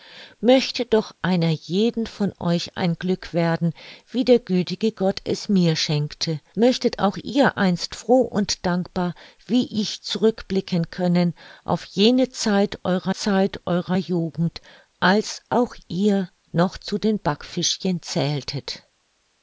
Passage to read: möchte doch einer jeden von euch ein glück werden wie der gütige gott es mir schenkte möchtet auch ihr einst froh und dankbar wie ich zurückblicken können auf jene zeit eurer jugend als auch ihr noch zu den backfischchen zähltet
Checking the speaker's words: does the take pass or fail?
fail